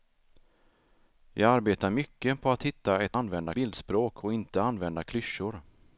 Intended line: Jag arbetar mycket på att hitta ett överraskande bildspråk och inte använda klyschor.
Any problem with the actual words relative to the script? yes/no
yes